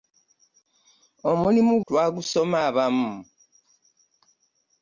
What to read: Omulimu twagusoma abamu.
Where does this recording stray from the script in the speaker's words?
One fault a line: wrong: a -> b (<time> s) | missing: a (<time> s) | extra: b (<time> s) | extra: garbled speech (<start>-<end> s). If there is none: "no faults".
no faults